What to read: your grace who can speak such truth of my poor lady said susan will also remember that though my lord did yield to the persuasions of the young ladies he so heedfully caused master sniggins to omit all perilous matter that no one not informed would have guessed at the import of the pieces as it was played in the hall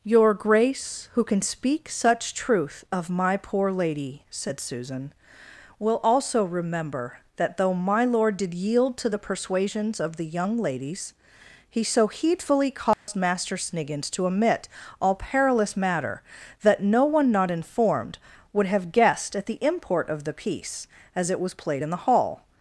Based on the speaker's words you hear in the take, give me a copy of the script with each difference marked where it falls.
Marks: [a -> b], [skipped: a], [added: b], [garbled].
your grace who can speak such truth of my poor lady said susan will also remember that though my lord did yield to the persuasions of the young ladies he so heedfully caused master sniggins to omit all perilous matter that no one not informed would have guessed at the import of the [pieces -> piece] as it was played in the hall